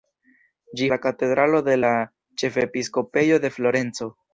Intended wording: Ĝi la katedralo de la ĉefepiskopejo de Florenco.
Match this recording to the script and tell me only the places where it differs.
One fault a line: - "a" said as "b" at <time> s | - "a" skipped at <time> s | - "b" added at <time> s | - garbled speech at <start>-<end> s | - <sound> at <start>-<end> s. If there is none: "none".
none